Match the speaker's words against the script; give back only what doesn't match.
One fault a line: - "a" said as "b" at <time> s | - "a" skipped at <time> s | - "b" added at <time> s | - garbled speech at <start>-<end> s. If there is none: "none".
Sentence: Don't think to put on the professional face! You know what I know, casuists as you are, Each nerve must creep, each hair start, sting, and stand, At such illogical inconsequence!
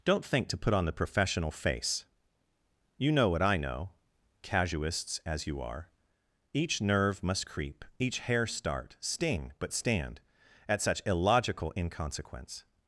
- "and" said as "but" at 9.6 s